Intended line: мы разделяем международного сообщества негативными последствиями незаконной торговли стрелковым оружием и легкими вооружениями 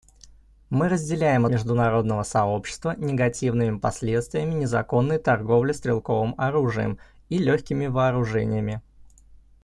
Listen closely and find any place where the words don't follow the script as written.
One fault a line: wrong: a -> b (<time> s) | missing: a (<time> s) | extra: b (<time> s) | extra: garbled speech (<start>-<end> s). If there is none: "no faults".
no faults